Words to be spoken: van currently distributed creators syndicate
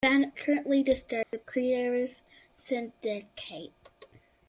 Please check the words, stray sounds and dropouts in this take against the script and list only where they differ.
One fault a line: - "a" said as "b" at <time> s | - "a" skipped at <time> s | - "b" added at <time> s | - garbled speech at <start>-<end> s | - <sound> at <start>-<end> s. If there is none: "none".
- dropout at 1.2-1.3 s